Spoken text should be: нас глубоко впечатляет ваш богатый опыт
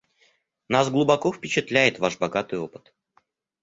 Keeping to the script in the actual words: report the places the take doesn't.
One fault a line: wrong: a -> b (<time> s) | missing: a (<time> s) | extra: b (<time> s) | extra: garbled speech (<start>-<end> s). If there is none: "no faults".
no faults